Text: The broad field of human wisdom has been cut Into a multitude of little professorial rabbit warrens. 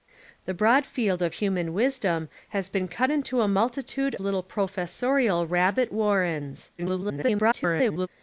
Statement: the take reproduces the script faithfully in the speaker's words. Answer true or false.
false